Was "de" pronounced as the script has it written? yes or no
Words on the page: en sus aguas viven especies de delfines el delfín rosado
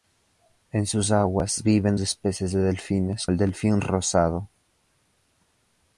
yes